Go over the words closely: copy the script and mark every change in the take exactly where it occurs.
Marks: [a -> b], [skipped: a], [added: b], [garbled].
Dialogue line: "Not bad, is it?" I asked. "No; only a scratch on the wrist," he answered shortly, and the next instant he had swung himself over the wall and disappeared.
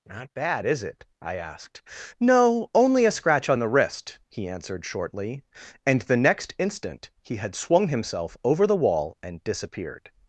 "Not bad, is it?" I asked. "No; only a scratch on the wrist," he answered shortly, and the next instant he had swung himself over the wall and disappeared.